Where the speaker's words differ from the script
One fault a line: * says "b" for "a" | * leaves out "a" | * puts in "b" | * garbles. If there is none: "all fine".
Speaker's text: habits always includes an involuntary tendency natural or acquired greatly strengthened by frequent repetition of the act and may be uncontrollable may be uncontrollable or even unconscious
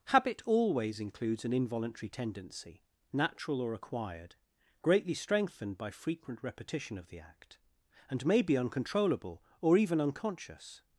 * says "habit" for "habits"
* leaves out "may be uncontrollable"